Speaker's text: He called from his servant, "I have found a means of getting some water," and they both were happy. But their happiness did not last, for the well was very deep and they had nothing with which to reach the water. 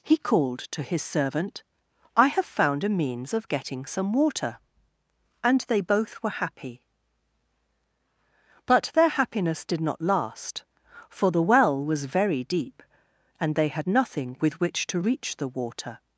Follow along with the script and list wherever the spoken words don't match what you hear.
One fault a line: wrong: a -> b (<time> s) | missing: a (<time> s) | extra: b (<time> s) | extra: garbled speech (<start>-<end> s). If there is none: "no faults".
wrong: from -> to (0.7 s)